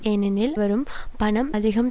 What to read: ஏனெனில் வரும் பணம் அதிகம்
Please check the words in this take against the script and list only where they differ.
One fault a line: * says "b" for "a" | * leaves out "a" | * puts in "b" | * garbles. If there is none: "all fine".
all fine